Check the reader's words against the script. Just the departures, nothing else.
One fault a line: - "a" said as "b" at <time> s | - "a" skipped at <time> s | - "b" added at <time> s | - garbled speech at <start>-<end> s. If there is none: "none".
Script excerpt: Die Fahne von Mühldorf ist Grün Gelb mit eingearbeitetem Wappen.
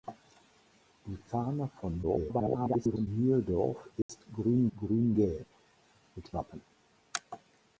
- garbled speech at 2.0-3.1 s
- "Grün" added at 4.8 s
- "eingearbeitetem" skipped at 6.3 s